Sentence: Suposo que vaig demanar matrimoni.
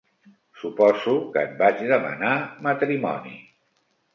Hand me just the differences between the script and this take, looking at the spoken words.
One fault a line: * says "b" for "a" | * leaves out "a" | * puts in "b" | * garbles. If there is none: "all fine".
* puts in "et"